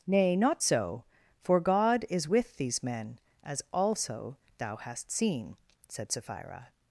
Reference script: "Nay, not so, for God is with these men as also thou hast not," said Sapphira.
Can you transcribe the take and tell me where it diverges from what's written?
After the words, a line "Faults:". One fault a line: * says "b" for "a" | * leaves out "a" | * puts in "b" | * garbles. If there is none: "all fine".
"Nay, not so, for God is with these men as also thou hast seen," said Sapphira.
Faults:
* says "seen" for "not"